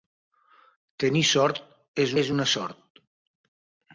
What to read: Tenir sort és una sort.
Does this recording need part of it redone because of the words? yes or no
yes